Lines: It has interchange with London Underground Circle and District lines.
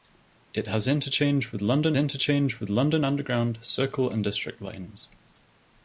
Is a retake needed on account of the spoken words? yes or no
yes